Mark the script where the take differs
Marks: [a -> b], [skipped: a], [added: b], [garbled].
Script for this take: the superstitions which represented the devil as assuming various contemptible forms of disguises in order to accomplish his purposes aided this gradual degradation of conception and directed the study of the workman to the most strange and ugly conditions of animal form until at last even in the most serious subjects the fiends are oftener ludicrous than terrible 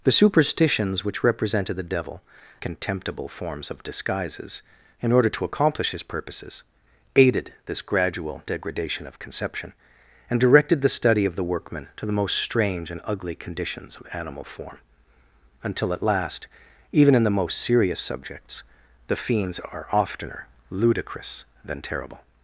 the superstitions which represented the devil [skipped: as assuming various] contemptible forms of disguises in order to accomplish his purposes aided this gradual degradation of conception and directed the study of the workman to the most strange and ugly conditions of animal form until at last even in the most serious subjects the fiends are oftener ludicrous than terrible